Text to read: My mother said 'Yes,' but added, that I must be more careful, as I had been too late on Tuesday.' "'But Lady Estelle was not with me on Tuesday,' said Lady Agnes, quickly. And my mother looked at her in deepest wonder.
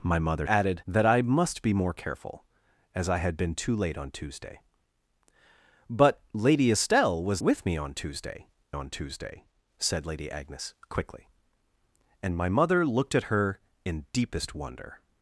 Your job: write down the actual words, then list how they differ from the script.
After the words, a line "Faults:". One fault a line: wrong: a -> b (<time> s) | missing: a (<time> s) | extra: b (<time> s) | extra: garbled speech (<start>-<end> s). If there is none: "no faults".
My mother added, that I must be more careful, as I had been too late on Tuesday.' "'But Lady Estelle was with me on Tuesday on Tuesday,' said Lady Agnes, quickly. And my mother looked at her in deepest wonder.
Faults:
missing: said Yes but (0.5 s)
missing: not (7.4 s)
extra: on Tuesday (8.7 s)